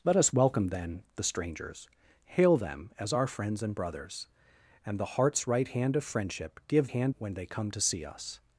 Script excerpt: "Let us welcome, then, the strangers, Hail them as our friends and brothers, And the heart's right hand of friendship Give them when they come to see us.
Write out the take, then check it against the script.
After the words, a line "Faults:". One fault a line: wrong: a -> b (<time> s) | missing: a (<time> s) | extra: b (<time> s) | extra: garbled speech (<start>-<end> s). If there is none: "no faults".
"Let us welcome, then, the strangers, Hail them as our friends and brothers, And the heart's right hand of friendship Give hand when they come to see us.
Faults:
wrong: them -> hand (6.9 s)